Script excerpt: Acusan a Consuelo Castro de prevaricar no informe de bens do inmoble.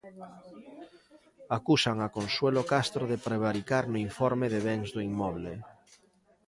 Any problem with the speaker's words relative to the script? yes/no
no